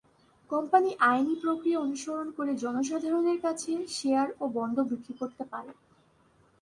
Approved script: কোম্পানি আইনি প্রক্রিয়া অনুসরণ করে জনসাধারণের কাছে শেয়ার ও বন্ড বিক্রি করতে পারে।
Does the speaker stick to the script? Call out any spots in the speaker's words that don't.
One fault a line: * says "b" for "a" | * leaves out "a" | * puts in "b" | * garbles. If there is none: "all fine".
all fine